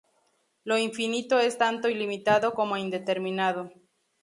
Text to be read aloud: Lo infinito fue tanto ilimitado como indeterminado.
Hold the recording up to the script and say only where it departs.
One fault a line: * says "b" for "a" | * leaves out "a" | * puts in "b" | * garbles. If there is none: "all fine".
* says "es" for "fue"